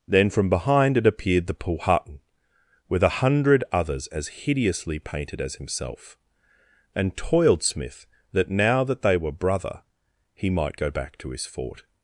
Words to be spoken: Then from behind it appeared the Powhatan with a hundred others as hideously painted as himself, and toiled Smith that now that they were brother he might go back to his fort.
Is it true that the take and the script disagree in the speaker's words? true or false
false